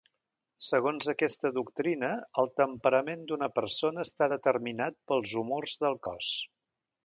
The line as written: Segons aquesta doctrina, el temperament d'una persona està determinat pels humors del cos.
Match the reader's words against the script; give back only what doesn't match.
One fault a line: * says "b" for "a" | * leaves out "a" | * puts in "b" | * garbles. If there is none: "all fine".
all fine